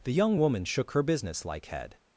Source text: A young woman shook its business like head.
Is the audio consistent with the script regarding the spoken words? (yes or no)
no